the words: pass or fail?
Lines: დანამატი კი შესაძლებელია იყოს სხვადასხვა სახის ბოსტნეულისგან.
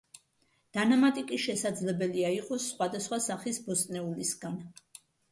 pass